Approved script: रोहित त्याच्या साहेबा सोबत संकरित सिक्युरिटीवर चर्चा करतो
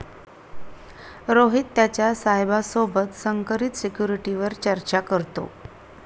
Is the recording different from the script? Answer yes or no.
no